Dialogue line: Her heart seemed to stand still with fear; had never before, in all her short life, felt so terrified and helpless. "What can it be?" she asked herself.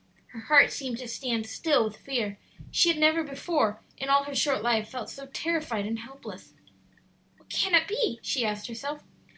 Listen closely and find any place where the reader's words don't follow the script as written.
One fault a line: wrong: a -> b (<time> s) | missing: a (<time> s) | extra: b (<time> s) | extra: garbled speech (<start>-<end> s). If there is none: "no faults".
extra: she (2.7 s)